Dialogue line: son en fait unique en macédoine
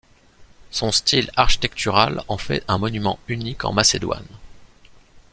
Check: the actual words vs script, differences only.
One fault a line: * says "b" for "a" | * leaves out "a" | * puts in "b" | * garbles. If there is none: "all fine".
* puts in "style architectural"
* puts in "un monument"